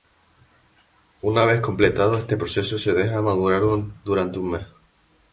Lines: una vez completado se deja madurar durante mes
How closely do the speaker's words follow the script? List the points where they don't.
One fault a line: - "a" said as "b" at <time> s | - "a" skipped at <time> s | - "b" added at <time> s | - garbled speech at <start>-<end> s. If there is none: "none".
- "este proceso" added at 2.2 s
- "un" added at 4.4 s